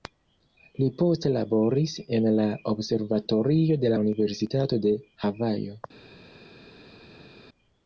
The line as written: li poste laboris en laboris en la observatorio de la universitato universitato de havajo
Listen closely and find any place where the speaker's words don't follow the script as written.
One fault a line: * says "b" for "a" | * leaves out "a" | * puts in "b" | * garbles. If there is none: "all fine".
* leaves out "laboris en"
* leaves out "universitato"